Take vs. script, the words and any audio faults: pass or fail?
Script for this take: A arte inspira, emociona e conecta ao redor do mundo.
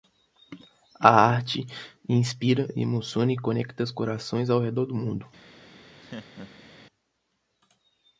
fail